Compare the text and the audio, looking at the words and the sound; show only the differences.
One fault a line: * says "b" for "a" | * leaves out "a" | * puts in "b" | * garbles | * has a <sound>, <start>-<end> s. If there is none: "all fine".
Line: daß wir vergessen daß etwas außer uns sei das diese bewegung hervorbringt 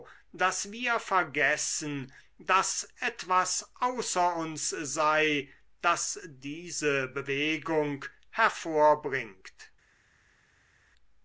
all fine